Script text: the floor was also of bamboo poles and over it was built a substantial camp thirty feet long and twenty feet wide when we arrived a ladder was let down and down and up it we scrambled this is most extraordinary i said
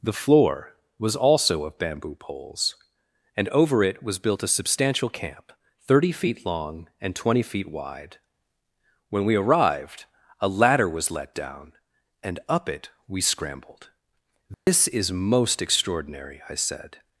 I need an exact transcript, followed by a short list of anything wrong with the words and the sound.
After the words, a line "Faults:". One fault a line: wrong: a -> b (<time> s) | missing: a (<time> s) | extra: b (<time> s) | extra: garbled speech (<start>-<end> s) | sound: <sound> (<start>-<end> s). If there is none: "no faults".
the floor was also of bamboo poles and over it was built a substantial camp thirty feet long and twenty feet wide when we arrived a ladder was let down and up it we scrambled this is most extraordinary i said
Faults:
missing: down and (12.4 s)
sound: dropout (14.5-14.7 s)